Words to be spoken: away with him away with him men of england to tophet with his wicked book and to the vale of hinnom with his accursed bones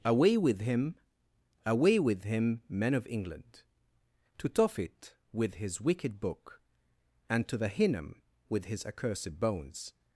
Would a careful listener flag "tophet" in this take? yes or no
no